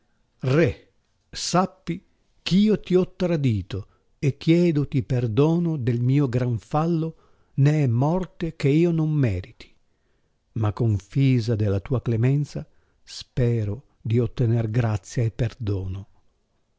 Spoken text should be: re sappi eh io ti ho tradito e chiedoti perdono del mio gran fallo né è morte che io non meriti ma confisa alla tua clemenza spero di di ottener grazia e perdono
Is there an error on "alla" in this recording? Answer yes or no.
yes